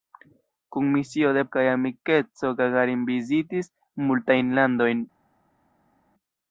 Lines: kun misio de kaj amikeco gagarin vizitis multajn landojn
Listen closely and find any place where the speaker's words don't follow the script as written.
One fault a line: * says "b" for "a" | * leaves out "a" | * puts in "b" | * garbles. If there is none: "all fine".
all fine